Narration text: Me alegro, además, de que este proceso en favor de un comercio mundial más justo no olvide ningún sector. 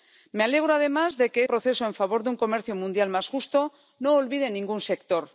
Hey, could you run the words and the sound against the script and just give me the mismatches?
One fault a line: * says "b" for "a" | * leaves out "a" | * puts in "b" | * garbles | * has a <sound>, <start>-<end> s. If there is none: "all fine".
* leaves out "este"